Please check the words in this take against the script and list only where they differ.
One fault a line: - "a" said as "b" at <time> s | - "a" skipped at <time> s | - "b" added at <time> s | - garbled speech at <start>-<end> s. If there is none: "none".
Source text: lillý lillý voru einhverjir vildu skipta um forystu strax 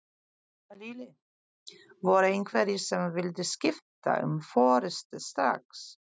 - "lillý" skipped at 1.1 s
- "sem" added at 2.9 s